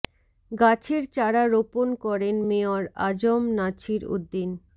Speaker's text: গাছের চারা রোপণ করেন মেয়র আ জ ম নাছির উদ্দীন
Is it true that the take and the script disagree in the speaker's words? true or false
false